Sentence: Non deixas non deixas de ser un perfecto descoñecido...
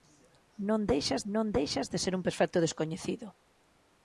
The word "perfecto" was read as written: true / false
true